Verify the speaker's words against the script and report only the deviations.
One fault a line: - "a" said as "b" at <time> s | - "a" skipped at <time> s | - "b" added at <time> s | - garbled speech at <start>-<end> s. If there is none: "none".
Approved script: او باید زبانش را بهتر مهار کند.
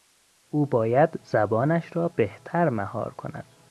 none